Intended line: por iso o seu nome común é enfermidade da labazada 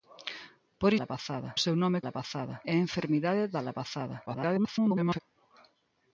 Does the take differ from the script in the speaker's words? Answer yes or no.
yes